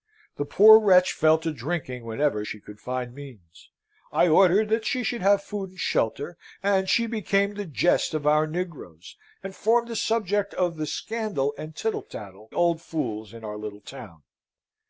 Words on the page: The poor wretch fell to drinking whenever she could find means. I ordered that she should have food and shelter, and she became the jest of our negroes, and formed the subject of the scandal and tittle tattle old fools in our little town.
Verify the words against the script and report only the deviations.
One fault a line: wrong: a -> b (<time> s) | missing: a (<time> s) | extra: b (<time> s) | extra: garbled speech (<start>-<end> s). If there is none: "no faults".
no faults